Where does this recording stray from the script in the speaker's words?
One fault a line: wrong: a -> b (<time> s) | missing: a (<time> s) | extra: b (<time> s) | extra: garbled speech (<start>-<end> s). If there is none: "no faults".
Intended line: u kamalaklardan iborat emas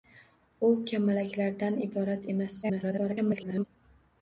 extra: garbled speech (2.6-3.6 s)